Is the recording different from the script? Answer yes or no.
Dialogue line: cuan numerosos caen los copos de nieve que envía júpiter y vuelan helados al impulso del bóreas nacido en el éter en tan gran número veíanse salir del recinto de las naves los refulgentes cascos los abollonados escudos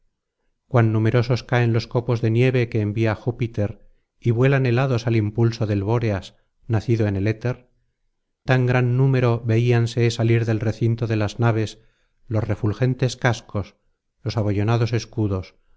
yes